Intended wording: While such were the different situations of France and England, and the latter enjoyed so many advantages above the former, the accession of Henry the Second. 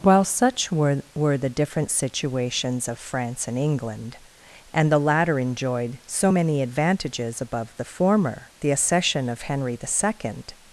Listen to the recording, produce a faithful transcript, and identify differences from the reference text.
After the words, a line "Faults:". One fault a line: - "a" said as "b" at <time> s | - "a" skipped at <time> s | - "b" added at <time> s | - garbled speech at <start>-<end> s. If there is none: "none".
While such were were the different situations of France and England, and the latter enjoyed so many advantages above the former, the accession of Henry the Second.
Faults:
- "were" added at 1.1 s